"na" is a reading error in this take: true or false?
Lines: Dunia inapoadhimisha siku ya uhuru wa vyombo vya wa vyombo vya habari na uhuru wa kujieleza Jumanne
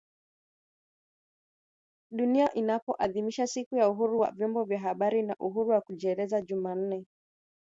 false